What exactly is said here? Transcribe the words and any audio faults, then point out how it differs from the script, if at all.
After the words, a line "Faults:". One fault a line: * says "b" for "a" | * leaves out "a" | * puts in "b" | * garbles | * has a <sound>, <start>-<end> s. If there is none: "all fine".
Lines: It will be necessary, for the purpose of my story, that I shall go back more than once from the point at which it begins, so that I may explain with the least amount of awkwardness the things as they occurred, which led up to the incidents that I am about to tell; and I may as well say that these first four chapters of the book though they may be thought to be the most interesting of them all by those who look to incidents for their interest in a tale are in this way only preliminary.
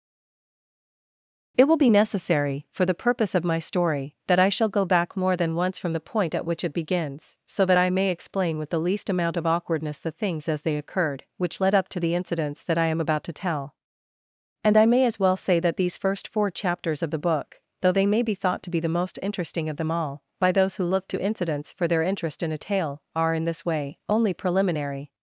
It will be necessary, for the purpose of my story, that I shall go back more than once from the point at which it begins, so that I may explain with the least amount of awkwardness the things as they occurred, which led up to the incidents that I am about to tell; and I may as well say that these first four chapters of the book though they may be thought to be the most interesting of them all by those who look to incidents for their interest in a tale are in this way only preliminary.
Faults:
all fine